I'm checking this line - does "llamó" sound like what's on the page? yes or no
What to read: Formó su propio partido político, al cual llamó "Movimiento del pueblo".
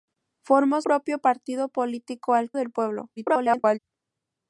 no